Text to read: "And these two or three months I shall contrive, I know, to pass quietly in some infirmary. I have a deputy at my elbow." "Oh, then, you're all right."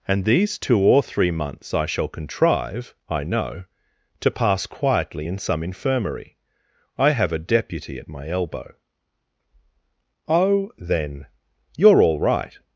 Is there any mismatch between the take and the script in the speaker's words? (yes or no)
no